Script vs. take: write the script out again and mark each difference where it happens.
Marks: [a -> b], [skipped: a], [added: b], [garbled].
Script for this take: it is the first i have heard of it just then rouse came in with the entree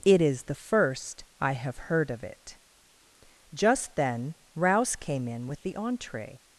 it is the first i have heard of it just then rouse came in with the entree